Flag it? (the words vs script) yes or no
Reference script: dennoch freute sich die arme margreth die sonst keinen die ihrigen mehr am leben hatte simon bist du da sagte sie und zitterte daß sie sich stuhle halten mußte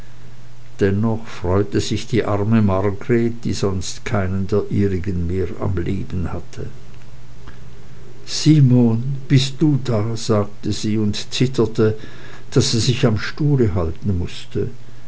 yes